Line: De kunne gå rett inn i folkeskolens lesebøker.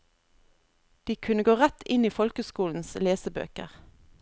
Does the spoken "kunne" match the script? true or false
true